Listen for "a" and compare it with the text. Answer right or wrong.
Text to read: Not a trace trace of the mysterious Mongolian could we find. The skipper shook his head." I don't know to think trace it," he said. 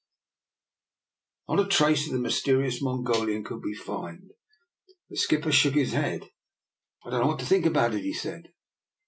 right